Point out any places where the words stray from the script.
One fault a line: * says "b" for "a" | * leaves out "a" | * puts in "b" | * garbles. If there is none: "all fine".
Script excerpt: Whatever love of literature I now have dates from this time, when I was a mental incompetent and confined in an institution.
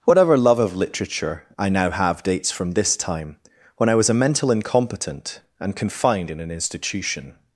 all fine